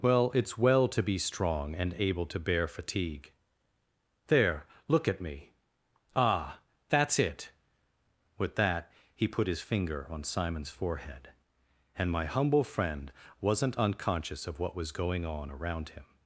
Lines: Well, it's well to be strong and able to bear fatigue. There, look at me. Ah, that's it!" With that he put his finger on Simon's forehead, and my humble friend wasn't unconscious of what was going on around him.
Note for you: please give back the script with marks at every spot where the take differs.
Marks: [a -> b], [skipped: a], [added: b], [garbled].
Well, it's well to be strong and able to bear fatigue. There, look at me. Ah, that's it!" With that he put his finger on Simon's forehead, and my humble friend wasn't unconscious of what was going on around him.